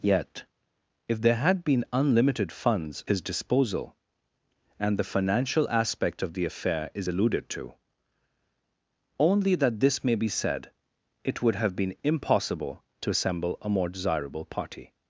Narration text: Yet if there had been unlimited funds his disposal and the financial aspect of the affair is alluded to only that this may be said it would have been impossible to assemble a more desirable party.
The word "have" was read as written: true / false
true